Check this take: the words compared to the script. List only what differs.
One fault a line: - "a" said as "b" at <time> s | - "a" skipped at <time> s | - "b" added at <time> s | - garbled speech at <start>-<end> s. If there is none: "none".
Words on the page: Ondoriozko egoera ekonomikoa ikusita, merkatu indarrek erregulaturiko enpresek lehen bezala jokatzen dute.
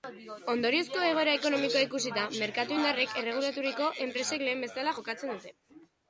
none